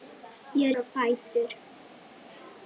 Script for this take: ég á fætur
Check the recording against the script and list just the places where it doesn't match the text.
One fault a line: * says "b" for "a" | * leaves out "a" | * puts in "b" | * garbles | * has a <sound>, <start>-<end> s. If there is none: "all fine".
all fine